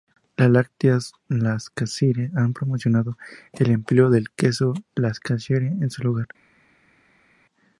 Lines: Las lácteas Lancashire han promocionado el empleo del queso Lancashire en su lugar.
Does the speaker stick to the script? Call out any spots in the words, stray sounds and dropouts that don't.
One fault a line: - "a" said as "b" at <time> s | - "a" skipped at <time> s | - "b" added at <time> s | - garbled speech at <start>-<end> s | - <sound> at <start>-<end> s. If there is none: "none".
none